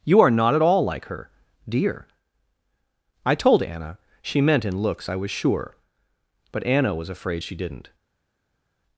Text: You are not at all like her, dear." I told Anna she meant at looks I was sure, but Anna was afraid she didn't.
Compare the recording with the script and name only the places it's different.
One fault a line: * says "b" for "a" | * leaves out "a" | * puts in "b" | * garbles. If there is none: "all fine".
* says "in" for "at"